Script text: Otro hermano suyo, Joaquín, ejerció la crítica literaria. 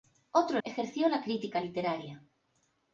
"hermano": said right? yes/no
no